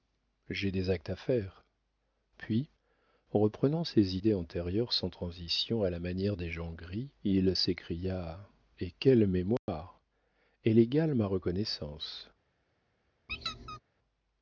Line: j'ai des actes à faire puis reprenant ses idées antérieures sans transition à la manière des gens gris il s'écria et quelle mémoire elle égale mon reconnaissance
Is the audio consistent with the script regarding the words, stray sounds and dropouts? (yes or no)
no